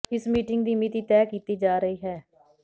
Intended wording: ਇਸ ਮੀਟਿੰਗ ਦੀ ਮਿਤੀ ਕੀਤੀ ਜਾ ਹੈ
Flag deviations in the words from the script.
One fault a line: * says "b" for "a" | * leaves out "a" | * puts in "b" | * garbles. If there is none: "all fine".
* puts in "ਤੈਅ"
* puts in "ਰਹੀ"